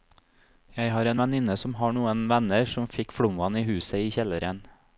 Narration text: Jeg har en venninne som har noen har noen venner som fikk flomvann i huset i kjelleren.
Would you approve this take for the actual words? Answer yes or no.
no